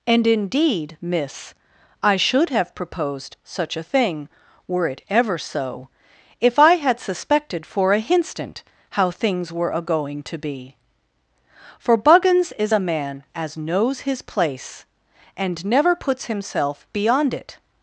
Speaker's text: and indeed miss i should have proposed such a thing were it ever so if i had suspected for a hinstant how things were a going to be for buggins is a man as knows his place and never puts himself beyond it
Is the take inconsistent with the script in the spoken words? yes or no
no